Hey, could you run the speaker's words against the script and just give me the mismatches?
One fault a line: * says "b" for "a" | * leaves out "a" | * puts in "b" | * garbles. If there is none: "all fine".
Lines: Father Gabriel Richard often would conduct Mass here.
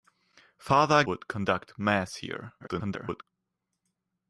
* leaves out "Gabriel Richard often"
* garbles